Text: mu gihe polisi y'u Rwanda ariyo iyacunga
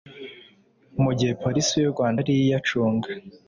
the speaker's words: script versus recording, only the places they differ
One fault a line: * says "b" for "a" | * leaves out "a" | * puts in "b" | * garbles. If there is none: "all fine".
all fine